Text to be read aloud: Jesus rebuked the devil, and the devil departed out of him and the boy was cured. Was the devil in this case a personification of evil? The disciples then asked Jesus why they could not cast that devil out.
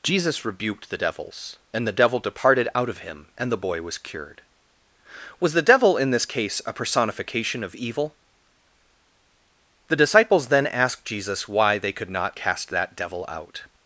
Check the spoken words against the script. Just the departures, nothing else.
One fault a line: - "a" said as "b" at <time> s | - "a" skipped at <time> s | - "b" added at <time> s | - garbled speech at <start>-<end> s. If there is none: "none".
- "devil" said as "devils" at 0.9 s